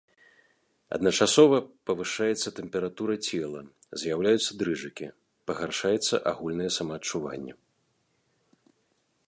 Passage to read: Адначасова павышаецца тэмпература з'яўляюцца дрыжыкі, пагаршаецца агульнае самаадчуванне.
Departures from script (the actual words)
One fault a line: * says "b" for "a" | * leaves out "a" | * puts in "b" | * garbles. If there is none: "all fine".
* puts in "цела"